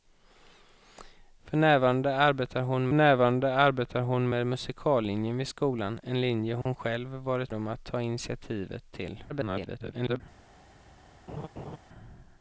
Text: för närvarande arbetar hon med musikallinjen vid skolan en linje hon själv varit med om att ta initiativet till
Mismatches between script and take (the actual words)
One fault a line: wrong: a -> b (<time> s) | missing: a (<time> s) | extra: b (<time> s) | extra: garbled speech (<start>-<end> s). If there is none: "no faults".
extra: närvarande arbetar hon (2.9 s)
missing: med (7.5 s)
extra: garbled speech (9.3-10.2 s)